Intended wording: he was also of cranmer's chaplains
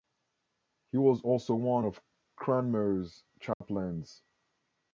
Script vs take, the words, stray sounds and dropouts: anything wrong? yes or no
yes